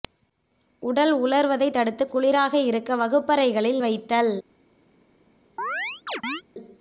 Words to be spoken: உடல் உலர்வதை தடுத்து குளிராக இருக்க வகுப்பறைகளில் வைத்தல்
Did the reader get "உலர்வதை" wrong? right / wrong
right